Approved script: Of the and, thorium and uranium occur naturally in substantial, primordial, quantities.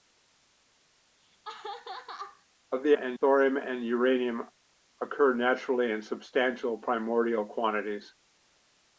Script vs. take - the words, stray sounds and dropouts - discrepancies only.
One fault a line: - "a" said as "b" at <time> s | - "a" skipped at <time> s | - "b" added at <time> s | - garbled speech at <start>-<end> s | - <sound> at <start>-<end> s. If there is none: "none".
- laugh at 1.2-2.5 s